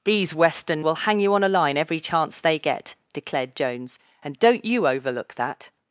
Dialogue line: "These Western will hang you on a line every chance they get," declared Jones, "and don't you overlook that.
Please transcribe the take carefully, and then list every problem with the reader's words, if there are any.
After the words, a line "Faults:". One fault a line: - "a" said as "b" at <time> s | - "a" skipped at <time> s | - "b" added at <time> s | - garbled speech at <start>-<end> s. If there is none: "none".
"These Western will hang you on a line every chance they get," declared Jones, "and don't you overlook that.
Faults:
none